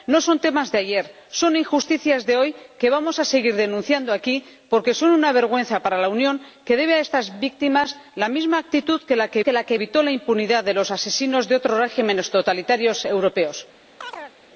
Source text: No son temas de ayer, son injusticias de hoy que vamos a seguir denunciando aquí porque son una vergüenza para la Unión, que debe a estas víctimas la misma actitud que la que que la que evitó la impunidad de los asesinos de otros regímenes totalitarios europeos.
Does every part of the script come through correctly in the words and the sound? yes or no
no